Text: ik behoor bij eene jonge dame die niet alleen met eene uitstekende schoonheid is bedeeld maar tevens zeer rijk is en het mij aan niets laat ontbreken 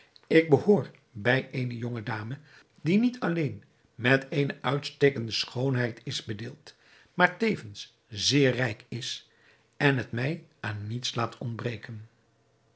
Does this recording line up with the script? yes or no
yes